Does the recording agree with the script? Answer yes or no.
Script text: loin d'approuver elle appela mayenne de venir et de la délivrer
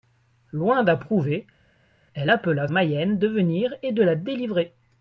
yes